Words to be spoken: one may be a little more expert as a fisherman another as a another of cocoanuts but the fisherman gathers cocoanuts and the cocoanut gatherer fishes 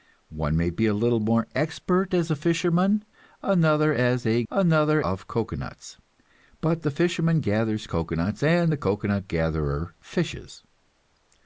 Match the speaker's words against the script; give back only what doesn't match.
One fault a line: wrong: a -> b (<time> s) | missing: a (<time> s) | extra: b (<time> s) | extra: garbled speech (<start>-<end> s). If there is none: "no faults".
no faults